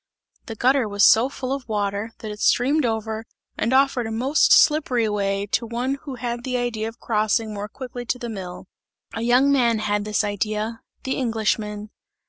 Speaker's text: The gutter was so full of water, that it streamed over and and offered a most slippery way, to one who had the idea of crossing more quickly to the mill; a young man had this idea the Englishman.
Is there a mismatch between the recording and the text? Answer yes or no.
yes